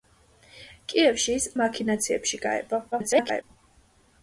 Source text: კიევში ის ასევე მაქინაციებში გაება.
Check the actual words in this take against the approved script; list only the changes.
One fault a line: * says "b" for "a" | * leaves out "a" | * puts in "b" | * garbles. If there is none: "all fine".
* leaves out "ასევე"
* garbles